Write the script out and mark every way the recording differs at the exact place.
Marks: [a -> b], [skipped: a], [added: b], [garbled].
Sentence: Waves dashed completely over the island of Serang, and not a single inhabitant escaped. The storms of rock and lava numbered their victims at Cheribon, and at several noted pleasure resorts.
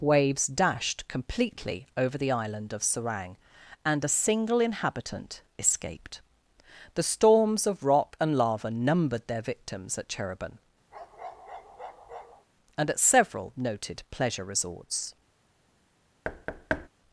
Waves dashed completely over the island of Serang, and [skipped: not] a single inhabitant escaped. The storms of rock and lava numbered their victims at Cheribon, and at several noted pleasure resorts.